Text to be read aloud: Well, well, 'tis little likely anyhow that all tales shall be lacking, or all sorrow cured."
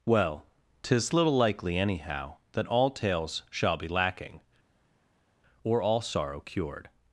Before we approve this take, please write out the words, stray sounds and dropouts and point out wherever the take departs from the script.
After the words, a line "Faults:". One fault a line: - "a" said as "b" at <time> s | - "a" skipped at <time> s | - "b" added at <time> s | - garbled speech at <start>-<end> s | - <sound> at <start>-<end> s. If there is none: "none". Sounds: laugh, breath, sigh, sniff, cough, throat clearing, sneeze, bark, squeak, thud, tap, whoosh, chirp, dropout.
Well, 'tis little likely anyhow that all tales shall be lacking, or all sorrow cured."
Faults:
- "well" skipped at 0.5 s